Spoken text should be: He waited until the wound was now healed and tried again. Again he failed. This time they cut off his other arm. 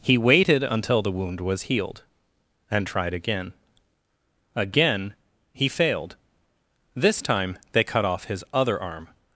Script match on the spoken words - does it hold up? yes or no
no